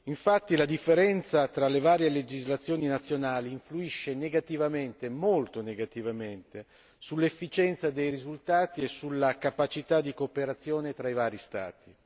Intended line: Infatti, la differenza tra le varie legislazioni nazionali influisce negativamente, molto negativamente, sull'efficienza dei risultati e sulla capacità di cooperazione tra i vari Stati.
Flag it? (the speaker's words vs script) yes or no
no